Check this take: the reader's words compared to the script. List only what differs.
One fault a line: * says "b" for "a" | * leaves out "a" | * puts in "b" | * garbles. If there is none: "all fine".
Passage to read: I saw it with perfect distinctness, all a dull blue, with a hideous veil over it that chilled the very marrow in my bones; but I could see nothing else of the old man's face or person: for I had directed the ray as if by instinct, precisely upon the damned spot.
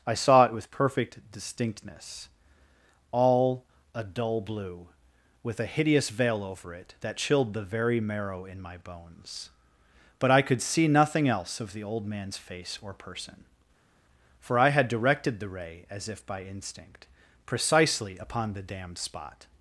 all fine